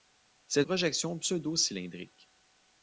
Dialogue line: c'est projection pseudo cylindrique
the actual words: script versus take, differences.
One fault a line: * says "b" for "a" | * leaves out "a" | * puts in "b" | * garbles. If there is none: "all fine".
all fine